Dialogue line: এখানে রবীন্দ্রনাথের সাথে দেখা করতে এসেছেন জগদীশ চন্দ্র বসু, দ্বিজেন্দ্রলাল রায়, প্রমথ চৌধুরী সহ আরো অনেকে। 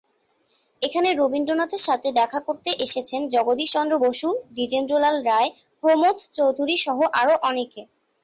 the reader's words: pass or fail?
pass